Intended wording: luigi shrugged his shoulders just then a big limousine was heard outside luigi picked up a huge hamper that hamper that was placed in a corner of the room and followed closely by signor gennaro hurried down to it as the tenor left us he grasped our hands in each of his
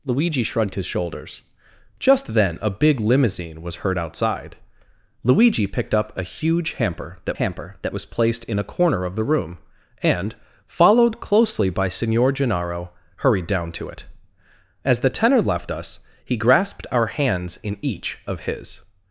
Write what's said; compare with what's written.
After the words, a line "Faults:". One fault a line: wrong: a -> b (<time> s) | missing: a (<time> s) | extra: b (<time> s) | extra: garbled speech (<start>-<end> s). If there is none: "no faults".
luigi shrugged his shoulders just then a big limousine was heard outside luigi picked up a huge hamper that hamper that was placed in a corner of the room and followed closely by signor gennaro hurried down to it as the tenor left us he grasped our hands in each of his
Faults:
no faults